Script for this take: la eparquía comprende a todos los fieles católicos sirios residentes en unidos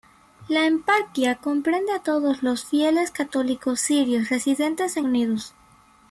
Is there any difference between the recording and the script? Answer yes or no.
no